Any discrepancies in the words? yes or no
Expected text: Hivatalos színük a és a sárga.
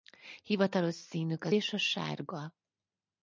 no